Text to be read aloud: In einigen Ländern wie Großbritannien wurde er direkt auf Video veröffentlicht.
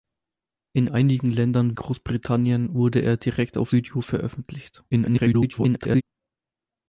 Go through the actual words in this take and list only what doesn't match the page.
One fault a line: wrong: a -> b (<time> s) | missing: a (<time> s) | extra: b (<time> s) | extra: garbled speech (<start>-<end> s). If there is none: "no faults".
missing: wie (1.8 s)
extra: garbled speech (4.9-6.0 s)